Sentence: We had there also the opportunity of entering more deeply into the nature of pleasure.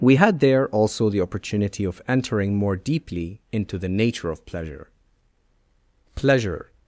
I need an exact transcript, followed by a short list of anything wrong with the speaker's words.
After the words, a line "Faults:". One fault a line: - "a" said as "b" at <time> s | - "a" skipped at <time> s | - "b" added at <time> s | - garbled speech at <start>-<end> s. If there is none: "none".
We had there also the opportunity of entering more deeply into the nature of pleasure pleasure.
Faults:
- "pleasure" added at 6.1 s